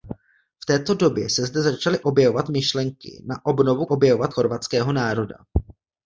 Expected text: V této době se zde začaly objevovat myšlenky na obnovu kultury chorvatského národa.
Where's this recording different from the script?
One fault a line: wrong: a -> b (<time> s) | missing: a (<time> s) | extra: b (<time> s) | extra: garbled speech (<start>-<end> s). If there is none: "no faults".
wrong: kultury -> objevovat (3.8 s)